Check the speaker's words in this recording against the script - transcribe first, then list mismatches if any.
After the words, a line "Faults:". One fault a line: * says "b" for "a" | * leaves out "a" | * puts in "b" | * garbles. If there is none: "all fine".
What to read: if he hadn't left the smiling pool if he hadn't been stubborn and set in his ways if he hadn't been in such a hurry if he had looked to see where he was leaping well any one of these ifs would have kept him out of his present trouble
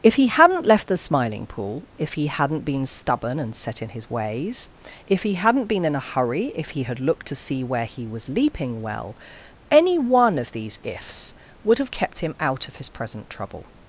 if he hadn't left the smiling pool if he hadn't been stubborn and set in his ways if he hadn't been in a hurry if he had looked to see where he was leaping well any one of these ifs would have kept him out of his present trouble
Faults:
* leaves out "such"